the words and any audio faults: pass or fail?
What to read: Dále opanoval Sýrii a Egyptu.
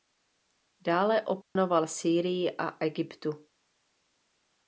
fail